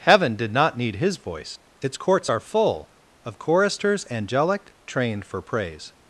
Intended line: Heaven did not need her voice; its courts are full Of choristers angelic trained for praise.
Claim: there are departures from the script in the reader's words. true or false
true